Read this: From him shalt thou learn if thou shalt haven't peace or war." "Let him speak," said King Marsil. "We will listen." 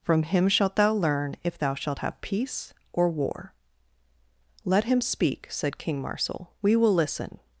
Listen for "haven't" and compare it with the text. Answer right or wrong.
wrong